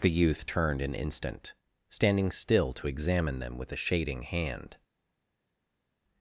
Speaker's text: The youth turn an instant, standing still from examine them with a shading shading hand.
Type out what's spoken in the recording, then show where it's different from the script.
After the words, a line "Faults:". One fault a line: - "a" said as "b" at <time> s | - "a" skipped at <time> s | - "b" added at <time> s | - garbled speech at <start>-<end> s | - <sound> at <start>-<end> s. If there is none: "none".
The youth turned an instant, standing still to examine them with a shading hand.
Faults:
- "turn" said as "turned" at 0.5 s
- "from" said as "to" at 2.7 s
- "shading" skipped at 4.2 s